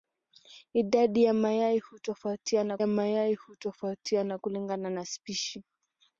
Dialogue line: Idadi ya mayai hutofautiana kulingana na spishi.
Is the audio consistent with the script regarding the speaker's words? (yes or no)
no